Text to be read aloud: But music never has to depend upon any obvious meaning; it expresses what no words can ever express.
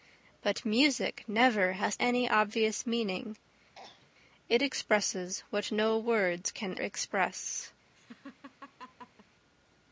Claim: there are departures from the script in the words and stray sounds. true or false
true